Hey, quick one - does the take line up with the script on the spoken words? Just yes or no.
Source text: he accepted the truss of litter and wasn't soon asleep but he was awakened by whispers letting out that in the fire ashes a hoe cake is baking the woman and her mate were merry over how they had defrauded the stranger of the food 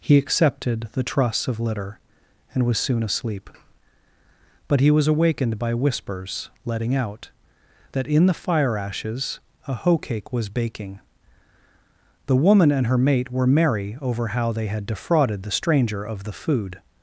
no